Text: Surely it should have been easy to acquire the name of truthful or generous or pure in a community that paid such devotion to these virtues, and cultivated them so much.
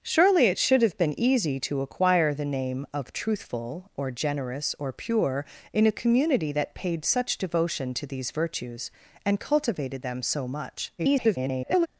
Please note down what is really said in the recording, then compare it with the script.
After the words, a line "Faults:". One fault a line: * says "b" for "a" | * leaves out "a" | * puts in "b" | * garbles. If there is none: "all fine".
Surely it should have been easy to acquire the name of truthful or generous or pure in a community that paid such devotion to these virtues, and cultivated them so much. [garbled]
Faults:
* garbles